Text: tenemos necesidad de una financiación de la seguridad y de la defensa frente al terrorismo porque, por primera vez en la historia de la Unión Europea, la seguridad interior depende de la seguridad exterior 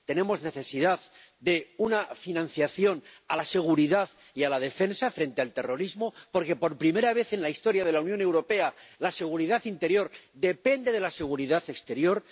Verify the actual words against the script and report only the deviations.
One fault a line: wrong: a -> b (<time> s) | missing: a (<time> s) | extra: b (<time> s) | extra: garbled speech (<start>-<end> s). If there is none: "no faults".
no faults